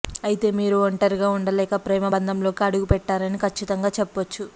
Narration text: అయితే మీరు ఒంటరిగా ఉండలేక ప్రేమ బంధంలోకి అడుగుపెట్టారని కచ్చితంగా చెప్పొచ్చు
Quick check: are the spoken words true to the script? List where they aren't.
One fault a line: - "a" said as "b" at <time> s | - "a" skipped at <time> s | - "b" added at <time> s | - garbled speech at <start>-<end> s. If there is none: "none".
none